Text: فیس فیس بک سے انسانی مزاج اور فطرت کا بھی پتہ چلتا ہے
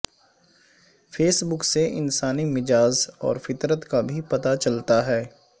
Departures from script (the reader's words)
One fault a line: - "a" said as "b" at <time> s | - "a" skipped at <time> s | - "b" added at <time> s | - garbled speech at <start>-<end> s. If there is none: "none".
- "فیس" skipped at 1.4 s